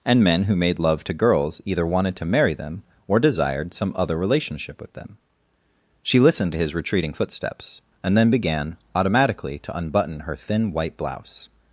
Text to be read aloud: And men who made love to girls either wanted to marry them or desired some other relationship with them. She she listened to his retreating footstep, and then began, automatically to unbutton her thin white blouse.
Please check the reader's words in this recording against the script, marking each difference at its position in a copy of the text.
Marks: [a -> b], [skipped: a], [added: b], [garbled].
And men who made love to girls either wanted to marry them or desired some other relationship with them. She [skipped: she] listened to his retreating [footstep, -> footsteps] and then began, automatically to unbutton her thin white blouse.